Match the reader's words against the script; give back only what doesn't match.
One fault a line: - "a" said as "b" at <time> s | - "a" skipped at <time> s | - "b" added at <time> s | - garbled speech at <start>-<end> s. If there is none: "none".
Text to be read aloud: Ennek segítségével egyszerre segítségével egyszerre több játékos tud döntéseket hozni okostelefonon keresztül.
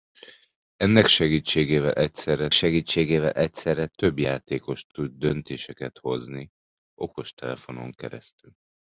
none